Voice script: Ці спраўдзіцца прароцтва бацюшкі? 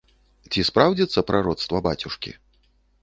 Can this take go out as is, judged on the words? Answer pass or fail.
pass